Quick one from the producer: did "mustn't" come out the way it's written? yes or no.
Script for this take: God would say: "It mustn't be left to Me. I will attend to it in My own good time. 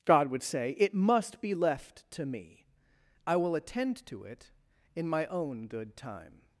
no